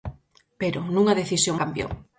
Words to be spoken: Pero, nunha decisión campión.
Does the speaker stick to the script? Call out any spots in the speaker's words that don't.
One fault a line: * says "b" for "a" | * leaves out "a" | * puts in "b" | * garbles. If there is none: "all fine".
all fine